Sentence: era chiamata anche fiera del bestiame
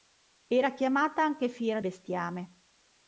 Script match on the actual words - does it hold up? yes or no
no